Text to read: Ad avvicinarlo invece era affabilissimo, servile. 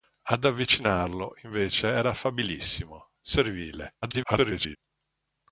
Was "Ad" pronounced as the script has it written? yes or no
yes